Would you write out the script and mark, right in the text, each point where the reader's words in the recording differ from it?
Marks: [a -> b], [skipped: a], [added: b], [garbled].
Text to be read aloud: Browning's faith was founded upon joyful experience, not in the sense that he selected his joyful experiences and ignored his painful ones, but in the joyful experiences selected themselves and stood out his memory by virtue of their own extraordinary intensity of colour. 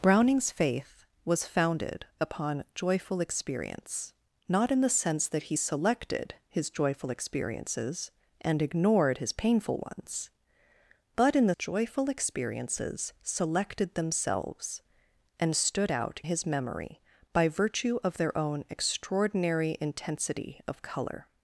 Browning's faith was founded upon joyful experience, not in the sense that he selected his joyful experiences and ignored his painful ones, but in the joyful experiences selected themselves and stood out his memory by virtue of their own extraordinary intensity of colour.